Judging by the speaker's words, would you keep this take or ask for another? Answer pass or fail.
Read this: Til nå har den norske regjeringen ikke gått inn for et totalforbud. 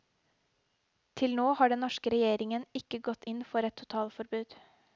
pass